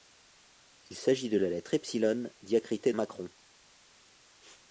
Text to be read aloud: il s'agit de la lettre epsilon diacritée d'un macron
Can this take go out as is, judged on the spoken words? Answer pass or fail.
fail